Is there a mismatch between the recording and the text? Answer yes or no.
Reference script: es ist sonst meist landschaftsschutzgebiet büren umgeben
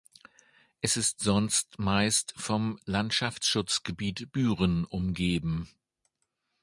yes